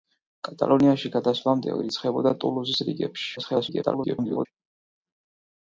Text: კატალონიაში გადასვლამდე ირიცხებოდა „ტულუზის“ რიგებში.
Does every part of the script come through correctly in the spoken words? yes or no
no